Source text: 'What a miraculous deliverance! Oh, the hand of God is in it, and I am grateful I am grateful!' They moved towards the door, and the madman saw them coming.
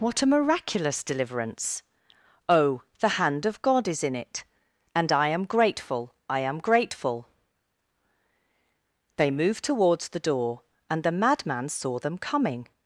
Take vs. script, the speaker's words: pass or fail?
pass